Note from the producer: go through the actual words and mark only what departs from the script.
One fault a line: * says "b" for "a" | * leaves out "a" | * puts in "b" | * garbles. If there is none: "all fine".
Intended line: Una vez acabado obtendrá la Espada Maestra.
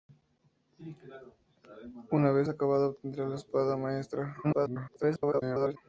* garbles